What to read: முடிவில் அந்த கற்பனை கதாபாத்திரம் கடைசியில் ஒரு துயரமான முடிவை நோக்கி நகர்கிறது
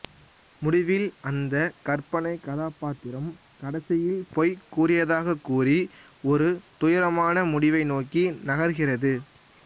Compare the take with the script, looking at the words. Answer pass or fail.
fail